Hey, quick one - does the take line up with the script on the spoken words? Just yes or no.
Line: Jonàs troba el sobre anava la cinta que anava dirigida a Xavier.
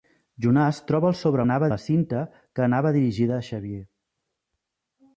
yes